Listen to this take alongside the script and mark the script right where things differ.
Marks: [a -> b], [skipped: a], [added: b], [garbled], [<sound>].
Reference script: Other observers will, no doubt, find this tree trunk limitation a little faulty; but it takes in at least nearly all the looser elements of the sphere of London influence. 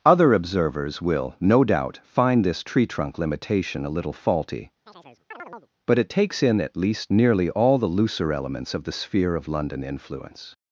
Other observers will, no doubt, find this tree trunk limitation a little faulty; [chirp] but it takes in at least nearly all the looser elements of the sphere of London influence.